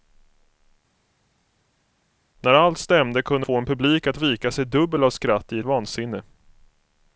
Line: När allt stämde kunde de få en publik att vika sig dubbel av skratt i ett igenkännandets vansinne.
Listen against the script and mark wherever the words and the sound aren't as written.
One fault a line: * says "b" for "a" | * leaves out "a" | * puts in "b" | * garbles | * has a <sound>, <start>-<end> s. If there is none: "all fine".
* leaves out "de"
* leaves out "ett igenkännandets"